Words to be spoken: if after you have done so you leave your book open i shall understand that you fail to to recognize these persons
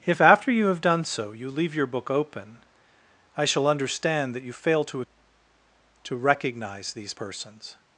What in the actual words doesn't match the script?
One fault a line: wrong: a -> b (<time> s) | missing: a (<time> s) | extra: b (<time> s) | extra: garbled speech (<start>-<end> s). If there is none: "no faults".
no faults